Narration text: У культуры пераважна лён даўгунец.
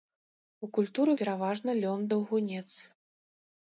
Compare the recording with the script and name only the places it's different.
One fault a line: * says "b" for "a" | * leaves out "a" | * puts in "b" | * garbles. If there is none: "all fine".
all fine